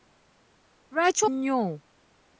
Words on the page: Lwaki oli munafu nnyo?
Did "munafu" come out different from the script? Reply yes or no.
yes